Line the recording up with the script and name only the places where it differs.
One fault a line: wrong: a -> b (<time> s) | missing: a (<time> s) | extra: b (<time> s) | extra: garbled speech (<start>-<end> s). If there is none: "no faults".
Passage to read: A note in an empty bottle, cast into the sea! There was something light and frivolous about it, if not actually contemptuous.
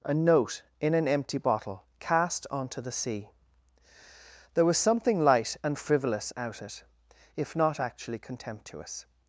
wrong: into -> onto (2.5 s)
wrong: about -> out (6.4 s)